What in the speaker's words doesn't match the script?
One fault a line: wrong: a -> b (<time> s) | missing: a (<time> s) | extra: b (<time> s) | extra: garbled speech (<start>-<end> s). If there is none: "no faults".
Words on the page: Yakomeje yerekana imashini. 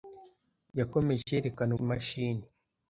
no faults